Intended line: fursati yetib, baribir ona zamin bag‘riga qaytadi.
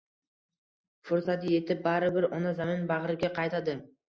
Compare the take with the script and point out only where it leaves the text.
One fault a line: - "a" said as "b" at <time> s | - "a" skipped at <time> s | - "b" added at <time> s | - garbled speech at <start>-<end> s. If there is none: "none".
none